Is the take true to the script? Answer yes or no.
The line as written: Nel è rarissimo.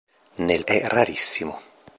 yes